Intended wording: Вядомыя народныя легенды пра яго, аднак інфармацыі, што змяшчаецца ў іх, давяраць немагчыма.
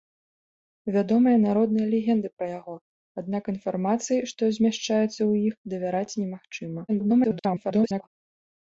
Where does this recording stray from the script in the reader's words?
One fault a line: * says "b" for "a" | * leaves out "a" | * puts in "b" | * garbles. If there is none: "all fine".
* garbles